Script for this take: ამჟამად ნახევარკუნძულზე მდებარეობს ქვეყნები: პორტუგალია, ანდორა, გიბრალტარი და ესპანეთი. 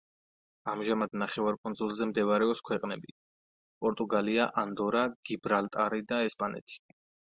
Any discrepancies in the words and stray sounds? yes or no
no